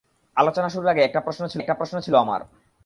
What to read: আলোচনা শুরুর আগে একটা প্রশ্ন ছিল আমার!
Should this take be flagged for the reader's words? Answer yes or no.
yes